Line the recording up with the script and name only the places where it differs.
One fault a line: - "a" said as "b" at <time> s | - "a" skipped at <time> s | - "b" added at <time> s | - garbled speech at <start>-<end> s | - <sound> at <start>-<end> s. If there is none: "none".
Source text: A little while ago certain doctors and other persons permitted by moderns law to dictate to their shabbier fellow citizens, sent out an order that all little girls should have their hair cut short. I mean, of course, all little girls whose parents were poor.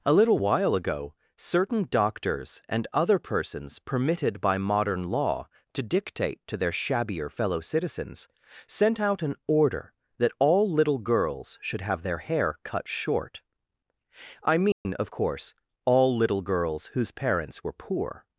- "moderns" said as "modern" at 4.6 s
- dropout at 14.7-14.9 s